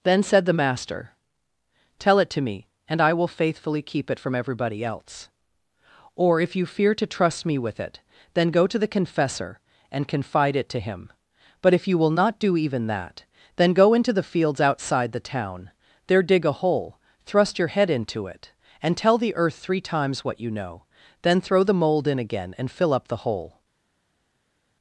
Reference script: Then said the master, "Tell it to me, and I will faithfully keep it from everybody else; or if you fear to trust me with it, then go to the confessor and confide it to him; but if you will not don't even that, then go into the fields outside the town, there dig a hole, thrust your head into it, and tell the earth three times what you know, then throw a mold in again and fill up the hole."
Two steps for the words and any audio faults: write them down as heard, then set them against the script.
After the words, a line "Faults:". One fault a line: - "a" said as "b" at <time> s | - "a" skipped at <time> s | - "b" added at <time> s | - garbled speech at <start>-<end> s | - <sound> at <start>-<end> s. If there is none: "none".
Then said the master, "Tell it to me, and I will faithfully keep it from everybody else; or if you fear to trust me with it, then go to the confessor and confide it to him; but if you will not do even that, then go into the fields outside the town, there dig a hole, thrust your head into it, and tell the earth three times what you know, then throw the mold in again and fill up the hole."
Faults:
- "don't" said as "do" at 12.4 s
- "a" said as "the" at 21.6 s